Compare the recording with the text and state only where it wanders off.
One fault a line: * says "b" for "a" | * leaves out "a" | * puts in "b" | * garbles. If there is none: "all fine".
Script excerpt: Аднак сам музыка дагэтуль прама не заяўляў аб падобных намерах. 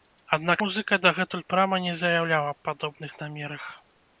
* leaves out "сам"